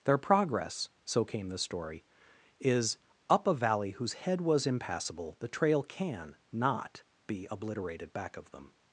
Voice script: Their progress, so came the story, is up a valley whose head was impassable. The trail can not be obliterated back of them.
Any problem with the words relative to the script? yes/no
no